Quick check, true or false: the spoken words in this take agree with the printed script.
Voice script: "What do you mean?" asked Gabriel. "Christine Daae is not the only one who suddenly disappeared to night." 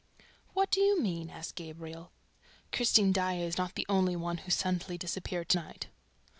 true